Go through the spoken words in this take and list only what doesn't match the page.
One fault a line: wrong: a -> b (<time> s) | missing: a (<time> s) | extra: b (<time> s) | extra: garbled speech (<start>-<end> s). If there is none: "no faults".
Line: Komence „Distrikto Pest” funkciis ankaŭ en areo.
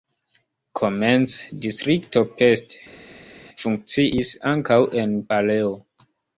no faults